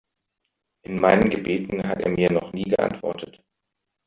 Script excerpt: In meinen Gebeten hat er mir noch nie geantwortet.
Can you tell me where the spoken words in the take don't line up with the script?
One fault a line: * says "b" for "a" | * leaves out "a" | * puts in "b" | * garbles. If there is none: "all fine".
all fine